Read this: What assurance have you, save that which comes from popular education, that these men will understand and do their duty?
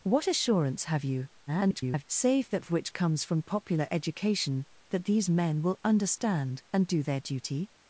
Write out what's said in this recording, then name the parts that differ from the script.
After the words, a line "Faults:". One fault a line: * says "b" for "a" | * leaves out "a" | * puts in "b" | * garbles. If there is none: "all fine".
What assurance have you, [garbled] save that which comes from popular education, that these men will understand and do their duty?
Faults:
* garbles